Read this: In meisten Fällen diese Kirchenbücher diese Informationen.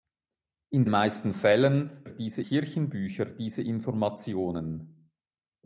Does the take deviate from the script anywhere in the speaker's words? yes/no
no